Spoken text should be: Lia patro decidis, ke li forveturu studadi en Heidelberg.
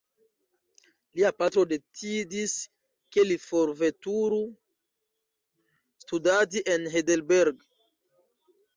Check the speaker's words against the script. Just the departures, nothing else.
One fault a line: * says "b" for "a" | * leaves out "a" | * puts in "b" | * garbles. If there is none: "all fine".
all fine